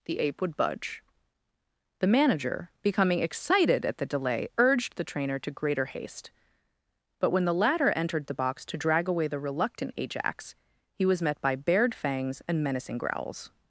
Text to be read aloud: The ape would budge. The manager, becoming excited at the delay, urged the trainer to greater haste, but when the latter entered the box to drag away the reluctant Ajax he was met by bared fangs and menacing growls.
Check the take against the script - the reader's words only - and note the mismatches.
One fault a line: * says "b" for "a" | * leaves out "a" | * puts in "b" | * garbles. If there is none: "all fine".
all fine